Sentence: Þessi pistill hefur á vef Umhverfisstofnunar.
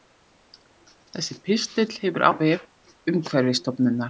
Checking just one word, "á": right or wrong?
right